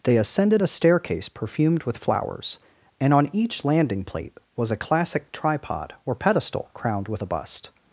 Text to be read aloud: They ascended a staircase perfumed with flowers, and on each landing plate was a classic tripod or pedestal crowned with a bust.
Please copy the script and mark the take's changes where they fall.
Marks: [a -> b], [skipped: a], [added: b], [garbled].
They ascended a staircase perfumed with flowers, and on each landing plate was a classic tripod or pedestal crowned with a bust.